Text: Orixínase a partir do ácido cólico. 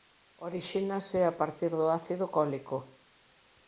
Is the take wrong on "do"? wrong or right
right